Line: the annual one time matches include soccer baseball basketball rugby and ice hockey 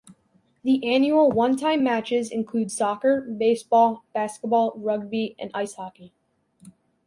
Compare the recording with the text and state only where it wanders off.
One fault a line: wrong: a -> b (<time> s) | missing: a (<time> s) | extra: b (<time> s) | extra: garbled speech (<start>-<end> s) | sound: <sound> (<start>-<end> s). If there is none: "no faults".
no faults